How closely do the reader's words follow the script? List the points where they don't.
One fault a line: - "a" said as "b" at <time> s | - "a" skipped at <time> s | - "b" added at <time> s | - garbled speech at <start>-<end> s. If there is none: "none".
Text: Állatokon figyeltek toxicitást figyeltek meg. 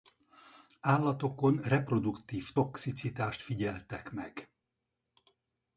- "figyeltek" said as "reproduktív" at 1.6 s